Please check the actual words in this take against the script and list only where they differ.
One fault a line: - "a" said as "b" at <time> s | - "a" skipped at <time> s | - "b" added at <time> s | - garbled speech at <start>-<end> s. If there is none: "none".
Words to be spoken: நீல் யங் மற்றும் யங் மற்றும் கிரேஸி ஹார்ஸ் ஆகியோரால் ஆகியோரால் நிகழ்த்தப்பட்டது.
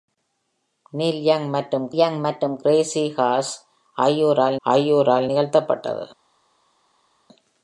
none